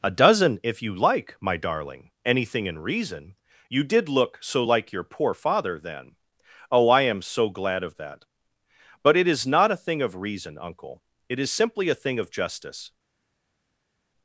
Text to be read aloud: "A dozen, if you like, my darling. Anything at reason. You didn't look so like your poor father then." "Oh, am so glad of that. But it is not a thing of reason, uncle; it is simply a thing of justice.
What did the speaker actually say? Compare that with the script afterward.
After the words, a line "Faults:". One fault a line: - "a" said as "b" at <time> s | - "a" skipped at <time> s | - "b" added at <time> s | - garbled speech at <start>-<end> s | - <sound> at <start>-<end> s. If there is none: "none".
"A dozen, if you like, my darling. Anything in reason. You did look so like your poor father then." "Oh, I am so glad of that. But it is not a thing of reason, uncle; it is simply a thing of justice.
Faults:
- "at" said as "in" at 2.6 s
- "didn't" said as "did" at 3.8 s
- "I" added at 6.9 s